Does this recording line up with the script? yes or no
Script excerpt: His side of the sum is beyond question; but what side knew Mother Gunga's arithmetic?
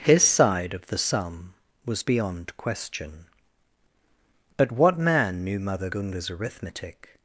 no